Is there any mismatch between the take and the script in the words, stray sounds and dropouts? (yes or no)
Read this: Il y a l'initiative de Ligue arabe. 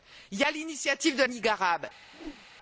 yes